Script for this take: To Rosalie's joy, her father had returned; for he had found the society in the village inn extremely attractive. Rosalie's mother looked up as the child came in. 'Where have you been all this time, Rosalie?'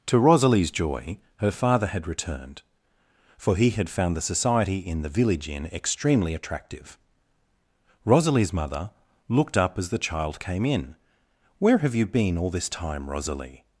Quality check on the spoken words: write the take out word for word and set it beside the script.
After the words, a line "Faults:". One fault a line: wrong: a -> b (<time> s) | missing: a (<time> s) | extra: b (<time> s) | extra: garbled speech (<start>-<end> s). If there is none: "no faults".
To Rosalie's joy, her father had returned; for he had found the society in the village inn extremely attractive. Rosalie's mother looked up as the child came in. 'Where have you been all this time, Rosalie?'
Faults:
no faults